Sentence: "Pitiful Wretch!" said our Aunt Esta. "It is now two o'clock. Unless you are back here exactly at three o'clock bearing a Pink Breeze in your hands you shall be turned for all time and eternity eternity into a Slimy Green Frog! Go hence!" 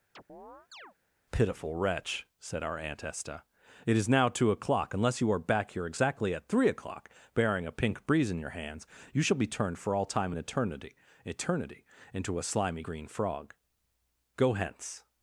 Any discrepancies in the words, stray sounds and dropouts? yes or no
yes